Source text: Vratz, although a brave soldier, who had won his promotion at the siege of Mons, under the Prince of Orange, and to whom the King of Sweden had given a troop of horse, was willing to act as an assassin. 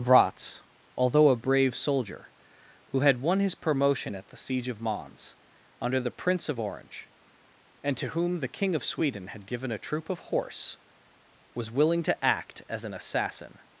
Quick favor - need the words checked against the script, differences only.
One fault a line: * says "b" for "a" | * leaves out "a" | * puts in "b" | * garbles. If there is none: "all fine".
all fine